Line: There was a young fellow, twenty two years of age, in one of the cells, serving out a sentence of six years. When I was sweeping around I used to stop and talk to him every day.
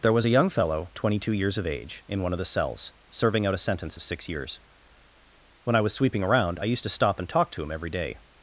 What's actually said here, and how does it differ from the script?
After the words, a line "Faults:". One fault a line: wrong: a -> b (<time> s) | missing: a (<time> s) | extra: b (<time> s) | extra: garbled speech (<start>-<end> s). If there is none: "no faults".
There was a young fellow, twenty two years of age, in one of the cells, serving out a sentence of six years. When I was sweeping around I used to stop and talk to him every day.
Faults:
no faults